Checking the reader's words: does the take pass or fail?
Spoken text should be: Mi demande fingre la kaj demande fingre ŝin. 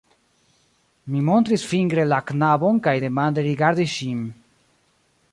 fail